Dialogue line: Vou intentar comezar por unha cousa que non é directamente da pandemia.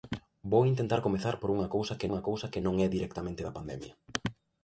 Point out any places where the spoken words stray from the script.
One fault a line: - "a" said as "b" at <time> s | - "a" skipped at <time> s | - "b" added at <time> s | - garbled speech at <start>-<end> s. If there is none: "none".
- "unha cousa que" added at 2.1 s